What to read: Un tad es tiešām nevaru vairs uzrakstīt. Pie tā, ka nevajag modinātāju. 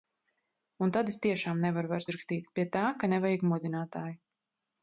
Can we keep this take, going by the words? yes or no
yes